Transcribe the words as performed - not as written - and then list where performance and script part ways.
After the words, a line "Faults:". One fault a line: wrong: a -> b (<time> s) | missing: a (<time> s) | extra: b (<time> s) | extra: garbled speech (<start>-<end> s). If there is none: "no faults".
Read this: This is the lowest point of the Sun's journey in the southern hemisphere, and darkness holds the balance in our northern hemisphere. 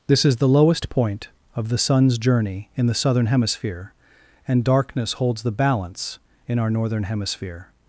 This is the lowest point of the Sun's journey in the southern hemisphere, and darkness holds the balance in our northern hemisphere.
Faults:
no faults